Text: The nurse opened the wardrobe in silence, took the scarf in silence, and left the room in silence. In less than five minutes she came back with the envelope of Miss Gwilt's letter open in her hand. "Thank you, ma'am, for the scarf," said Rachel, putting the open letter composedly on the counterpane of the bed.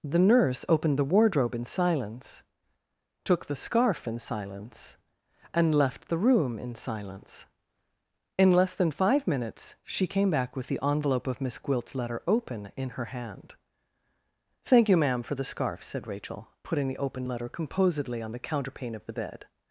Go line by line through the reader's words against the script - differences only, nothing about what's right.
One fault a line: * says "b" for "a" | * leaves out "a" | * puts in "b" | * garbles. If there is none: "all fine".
all fine